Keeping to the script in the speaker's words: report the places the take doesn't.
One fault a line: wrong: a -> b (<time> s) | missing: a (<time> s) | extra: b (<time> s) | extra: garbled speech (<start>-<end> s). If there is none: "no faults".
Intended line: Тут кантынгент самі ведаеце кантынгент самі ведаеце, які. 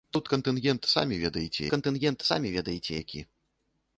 no faults